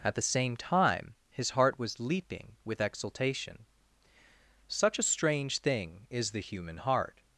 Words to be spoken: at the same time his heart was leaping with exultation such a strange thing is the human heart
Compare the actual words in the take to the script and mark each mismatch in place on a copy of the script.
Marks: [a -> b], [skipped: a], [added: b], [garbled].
at the same time his heart was leaping with exultation such a strange thing is the human heart